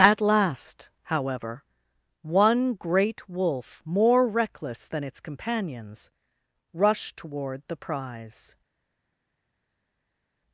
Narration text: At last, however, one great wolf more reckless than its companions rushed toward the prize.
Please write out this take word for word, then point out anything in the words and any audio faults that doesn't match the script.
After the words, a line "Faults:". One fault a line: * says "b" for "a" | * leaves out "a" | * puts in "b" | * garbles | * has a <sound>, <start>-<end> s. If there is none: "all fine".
At last, however, one great wolf more reckless than its companions rushed toward the prize.
Faults:
all fine